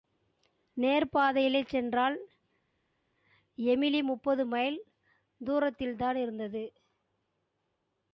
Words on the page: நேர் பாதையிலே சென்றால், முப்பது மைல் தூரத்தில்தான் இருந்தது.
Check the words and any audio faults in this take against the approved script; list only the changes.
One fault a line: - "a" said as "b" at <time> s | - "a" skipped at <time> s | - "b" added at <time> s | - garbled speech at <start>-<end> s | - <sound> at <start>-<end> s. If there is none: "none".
- "எமிலி" added at 3.6 s